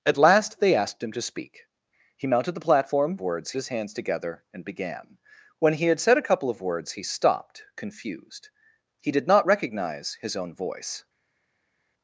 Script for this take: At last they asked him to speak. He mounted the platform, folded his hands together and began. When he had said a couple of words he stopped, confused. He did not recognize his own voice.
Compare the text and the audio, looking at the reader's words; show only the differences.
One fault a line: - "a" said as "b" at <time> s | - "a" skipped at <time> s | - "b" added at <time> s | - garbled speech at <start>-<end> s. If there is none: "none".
- "folded" said as "words" at 3.2 s